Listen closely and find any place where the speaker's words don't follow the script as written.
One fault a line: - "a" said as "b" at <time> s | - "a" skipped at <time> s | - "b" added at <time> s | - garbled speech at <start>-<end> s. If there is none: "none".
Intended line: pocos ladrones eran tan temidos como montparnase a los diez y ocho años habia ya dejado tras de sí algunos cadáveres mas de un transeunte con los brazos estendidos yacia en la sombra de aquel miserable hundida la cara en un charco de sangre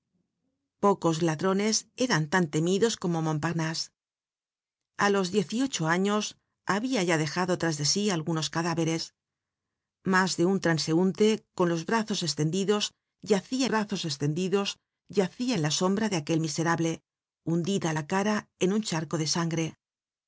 - "brazos estendidos yacia" added at 13.7 s